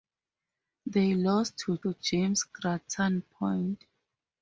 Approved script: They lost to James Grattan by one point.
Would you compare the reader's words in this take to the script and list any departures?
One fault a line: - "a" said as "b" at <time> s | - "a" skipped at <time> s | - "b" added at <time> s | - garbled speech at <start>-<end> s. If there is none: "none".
- "to" added at 1.8 s
- "by one" skipped at 3.2 s